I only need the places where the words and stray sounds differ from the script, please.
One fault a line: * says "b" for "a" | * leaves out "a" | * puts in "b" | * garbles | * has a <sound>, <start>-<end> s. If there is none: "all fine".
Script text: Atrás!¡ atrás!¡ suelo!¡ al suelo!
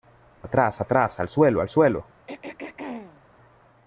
* puts in "al"
* has a throat clearing, 2.3-3.2 s